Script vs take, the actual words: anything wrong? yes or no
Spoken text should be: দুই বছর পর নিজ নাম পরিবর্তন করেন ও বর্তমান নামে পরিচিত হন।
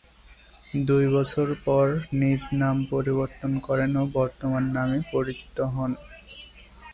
no